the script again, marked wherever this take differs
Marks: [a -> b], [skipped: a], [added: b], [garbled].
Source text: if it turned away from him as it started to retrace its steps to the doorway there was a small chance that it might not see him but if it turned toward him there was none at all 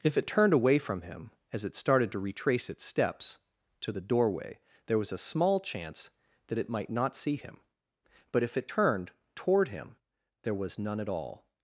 if it turned away from him as it started to retrace its steps to the doorway there was a small chance that it might not see him but if it turned toward him there was none at all